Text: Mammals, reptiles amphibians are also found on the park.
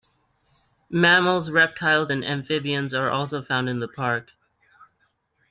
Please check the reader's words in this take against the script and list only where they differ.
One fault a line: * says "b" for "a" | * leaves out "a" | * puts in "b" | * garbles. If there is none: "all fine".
* puts in "and"
* says "in" for "on"